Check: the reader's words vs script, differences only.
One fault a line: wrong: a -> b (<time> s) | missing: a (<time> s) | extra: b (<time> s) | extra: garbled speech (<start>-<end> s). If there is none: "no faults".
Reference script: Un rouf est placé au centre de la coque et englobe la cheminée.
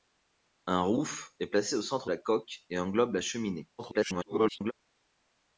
missing: de (2.1 s)
extra: garbled speech (3.8-4.7 s)